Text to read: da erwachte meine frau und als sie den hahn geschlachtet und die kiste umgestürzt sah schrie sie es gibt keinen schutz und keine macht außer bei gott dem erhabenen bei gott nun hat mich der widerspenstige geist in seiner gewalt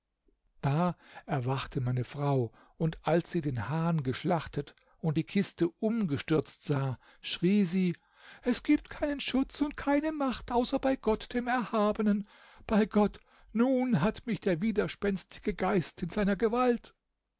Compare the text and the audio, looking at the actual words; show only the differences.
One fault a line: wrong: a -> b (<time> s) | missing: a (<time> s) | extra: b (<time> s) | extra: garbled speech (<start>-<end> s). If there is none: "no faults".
no faults